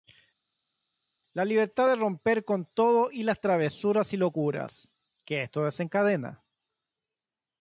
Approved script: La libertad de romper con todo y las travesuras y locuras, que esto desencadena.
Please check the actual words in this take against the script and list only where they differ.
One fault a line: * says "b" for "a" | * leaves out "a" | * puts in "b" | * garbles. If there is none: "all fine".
all fine